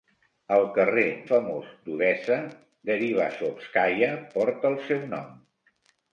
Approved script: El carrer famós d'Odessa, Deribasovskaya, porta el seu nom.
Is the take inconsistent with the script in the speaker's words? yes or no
no